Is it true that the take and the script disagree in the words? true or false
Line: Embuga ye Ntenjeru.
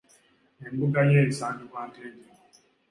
true